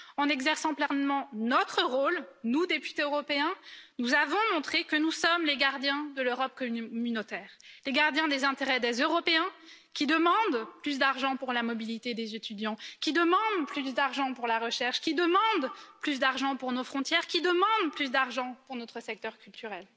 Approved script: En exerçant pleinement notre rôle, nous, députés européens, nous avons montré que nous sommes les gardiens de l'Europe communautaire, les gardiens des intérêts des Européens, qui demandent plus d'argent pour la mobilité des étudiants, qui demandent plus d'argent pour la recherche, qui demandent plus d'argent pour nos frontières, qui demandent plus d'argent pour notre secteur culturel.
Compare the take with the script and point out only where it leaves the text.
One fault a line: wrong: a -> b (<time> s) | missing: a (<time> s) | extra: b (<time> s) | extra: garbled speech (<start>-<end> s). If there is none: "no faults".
no faults